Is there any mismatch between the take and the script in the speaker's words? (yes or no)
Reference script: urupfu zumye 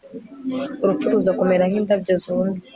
yes